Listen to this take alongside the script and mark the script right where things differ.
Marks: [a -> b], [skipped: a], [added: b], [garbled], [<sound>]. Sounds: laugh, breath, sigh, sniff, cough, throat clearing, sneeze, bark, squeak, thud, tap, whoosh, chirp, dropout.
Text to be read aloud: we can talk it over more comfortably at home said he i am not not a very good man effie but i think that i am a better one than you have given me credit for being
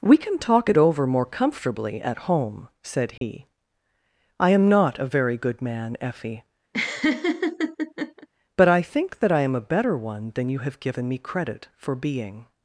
we can talk it over more comfortably at home said he [dropout] i am not [skipped: not] a very good man effie [laugh] but i think that i am a better one than you have given me credit for being